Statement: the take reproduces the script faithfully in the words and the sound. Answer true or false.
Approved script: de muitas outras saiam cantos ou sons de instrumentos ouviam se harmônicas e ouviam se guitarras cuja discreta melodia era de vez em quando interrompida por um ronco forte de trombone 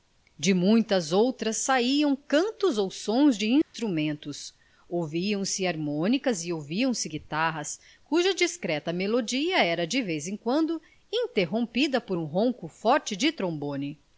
false